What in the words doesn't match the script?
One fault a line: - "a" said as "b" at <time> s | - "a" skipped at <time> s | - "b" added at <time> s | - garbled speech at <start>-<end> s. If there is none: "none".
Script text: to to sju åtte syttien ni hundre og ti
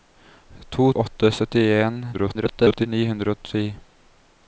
- "to sju" skipped at 0.9 s
- garbled speech at 2.1-2.9 s